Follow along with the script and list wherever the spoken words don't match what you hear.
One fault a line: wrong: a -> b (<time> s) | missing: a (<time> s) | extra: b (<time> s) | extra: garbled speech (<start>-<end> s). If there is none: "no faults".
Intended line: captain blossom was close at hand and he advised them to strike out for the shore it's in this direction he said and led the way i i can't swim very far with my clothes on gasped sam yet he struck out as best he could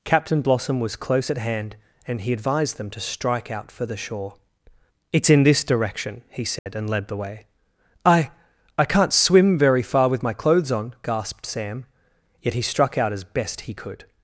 no faults